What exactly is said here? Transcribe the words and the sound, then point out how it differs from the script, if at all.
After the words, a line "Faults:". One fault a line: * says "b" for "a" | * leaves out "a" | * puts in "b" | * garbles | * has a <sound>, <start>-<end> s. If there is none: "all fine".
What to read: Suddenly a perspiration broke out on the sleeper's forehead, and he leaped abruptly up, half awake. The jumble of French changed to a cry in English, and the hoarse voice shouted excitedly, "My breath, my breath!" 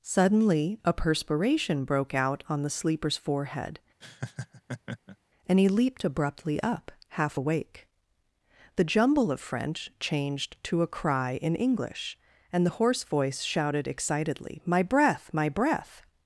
Suddenly a perspiration broke out on the sleeper's forehead, and he leaped abruptly up, half awake. The jumble of French changed to a cry in English, and the hoarse voice shouted excitedly, "My breath, my breath!"
Faults:
* has a laugh, 4.0-5.2 s